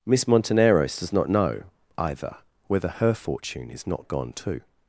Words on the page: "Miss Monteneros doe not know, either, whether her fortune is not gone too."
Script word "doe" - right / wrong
wrong